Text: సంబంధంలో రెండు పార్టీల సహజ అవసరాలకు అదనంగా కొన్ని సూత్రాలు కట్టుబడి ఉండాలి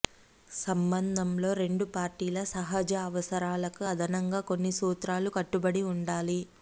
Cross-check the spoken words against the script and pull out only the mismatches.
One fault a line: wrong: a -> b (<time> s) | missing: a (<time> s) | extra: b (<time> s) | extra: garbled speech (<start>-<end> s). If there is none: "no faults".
no faults